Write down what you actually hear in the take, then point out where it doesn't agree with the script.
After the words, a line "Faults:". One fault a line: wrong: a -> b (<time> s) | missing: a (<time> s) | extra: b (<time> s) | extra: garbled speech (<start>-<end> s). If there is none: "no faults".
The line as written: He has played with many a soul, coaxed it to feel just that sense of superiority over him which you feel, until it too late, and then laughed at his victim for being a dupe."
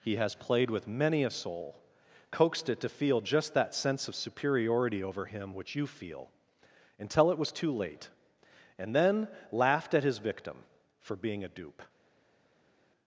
He has played with many a soul, coaxed it to feel just that sense of superiority over him which you feel, until it was too late, and then laughed at his victim for being a dupe."
Faults:
extra: was (7.4 s)